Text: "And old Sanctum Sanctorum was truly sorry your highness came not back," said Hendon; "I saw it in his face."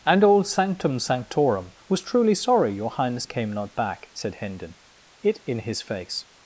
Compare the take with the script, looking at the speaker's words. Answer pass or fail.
fail